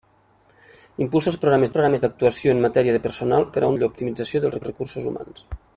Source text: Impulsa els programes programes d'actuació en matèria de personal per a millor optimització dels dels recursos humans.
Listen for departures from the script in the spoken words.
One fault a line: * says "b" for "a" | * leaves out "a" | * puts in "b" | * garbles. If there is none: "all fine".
all fine